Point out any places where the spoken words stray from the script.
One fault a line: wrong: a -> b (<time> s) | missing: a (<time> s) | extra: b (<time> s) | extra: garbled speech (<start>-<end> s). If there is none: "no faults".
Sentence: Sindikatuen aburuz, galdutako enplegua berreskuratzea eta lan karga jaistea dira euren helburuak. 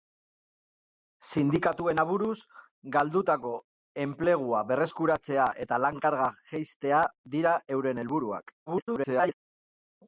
extra: garbled speech (8.7-9.4 s)